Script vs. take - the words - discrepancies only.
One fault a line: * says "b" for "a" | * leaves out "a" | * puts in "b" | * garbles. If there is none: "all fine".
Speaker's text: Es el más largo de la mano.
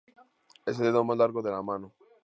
* puts in "dedo"